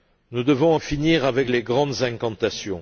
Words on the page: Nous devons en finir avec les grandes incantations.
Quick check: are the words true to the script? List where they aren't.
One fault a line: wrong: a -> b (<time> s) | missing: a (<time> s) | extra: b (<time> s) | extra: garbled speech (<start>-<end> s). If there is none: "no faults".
no faults